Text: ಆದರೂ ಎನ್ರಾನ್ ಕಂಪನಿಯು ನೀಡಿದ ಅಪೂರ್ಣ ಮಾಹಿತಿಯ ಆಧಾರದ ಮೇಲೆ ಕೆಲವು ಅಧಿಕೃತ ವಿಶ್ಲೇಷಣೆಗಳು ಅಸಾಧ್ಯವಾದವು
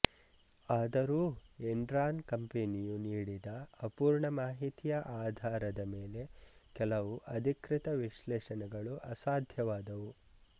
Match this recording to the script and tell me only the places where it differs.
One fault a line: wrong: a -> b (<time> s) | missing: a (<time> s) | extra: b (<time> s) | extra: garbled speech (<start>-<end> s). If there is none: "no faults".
no faults